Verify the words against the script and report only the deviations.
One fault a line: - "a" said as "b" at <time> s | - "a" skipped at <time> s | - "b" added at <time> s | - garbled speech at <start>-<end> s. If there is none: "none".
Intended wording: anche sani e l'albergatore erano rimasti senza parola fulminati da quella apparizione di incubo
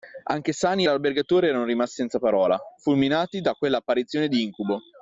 none